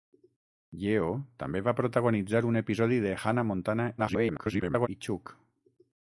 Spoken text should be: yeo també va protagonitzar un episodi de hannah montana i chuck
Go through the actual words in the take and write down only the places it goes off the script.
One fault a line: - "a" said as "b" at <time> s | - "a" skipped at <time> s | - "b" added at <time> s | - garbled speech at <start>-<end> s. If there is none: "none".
- garbled speech at 4.0-4.9 s